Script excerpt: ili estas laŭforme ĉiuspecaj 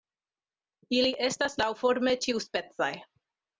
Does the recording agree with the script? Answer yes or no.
yes